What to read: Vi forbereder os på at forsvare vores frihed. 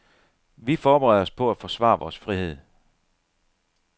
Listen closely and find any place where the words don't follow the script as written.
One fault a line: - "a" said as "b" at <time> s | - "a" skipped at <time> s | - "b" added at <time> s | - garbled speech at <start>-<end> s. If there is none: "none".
none